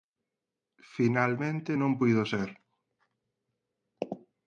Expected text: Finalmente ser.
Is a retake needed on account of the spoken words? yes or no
yes